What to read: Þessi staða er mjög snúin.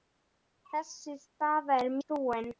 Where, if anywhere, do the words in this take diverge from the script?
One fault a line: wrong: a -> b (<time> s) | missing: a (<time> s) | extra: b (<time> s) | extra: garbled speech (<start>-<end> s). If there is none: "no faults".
missing: mjög (1.9 s)